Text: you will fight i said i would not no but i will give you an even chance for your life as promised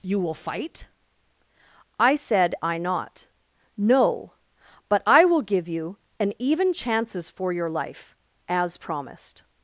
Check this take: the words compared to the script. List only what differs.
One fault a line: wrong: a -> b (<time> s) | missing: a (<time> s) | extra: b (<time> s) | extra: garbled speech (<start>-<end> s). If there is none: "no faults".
missing: would (2.8 s)
wrong: chance -> chances (6.7 s)